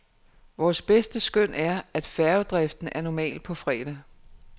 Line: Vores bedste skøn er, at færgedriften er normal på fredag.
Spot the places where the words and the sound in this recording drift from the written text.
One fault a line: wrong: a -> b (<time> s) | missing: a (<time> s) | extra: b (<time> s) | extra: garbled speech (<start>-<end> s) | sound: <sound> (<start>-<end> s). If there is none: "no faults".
no faults